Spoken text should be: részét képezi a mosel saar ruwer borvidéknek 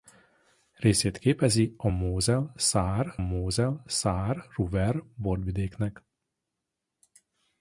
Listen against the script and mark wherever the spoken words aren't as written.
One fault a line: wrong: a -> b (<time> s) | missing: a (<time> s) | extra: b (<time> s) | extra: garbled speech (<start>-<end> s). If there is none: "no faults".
extra: mosel saar (3.2 s)